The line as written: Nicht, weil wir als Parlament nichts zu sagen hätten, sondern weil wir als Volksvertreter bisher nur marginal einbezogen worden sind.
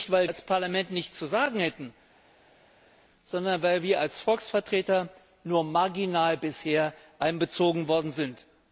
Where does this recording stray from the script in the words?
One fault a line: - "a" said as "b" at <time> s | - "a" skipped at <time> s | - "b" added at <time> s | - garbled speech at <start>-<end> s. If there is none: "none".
- "wir" skipped at 0.3 s